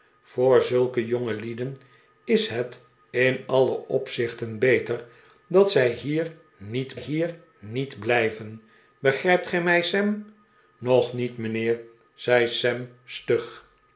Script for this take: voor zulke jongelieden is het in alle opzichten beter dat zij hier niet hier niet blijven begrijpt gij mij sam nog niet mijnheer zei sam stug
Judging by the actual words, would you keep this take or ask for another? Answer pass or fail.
pass